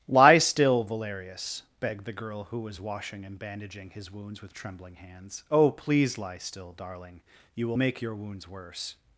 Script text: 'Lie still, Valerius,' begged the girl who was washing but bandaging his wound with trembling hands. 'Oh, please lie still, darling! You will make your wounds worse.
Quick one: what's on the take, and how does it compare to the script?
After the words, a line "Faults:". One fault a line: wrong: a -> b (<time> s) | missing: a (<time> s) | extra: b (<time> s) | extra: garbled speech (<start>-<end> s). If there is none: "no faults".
'Lie still, Valerius,' begged the girl who was washing and bandaging his wounds with trembling hands. 'Oh, please lie still, darling! You will make your wounds worse.
Faults:
wrong: but -> and (3.2 s)
wrong: wound -> wounds (4.1 s)